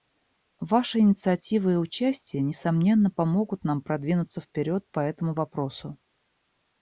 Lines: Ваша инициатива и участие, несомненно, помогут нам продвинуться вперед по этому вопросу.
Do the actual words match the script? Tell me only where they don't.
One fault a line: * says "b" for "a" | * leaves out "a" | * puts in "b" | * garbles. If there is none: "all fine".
all fine